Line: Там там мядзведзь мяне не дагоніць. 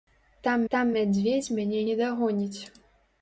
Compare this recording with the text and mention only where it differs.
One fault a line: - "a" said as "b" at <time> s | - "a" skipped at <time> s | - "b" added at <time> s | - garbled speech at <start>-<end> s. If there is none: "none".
none